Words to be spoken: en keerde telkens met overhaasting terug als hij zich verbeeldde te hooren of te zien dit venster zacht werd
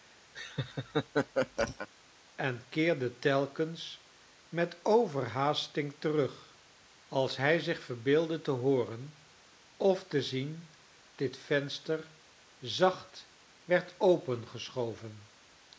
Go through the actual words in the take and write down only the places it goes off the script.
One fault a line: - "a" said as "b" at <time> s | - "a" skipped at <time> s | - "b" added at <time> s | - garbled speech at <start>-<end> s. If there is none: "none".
none